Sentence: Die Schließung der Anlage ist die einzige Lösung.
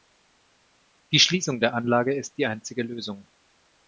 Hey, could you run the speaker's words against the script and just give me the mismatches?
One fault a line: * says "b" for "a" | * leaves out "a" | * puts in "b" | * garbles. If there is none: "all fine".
all fine